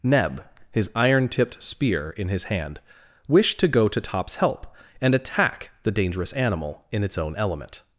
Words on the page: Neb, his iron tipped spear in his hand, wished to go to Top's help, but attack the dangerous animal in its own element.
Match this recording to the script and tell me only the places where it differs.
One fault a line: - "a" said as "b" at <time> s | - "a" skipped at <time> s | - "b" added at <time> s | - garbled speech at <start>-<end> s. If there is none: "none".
- "but" said as "and" at 5.0 s